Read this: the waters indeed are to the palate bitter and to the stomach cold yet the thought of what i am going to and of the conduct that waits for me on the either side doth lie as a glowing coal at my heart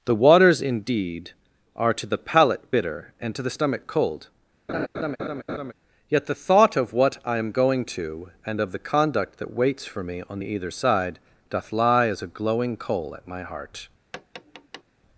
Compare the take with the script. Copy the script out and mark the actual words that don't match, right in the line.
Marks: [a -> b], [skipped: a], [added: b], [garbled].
the waters indeed are to the palate bitter and to the stomach cold yet the thought of what i am going to and of the conduct that waits for me on the either side doth lie as a glowing coal at my heart